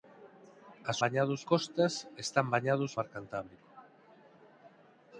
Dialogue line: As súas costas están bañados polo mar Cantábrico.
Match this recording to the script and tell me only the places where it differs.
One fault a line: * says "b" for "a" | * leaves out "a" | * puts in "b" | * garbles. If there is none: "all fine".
* says "bañados" for "súas"
* leaves out "polo"